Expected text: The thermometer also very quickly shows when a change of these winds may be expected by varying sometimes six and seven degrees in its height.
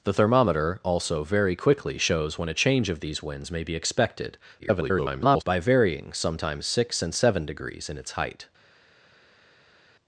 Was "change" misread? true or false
false